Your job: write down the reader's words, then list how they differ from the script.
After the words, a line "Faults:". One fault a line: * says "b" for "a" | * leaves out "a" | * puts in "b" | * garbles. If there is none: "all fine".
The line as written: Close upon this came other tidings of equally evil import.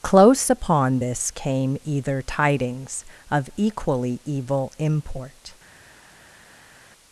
Close upon this came either tidings of equally evil import.
Faults:
* says "either" for "other"